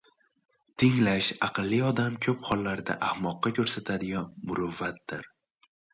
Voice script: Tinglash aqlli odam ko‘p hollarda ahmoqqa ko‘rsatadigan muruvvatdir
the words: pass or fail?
pass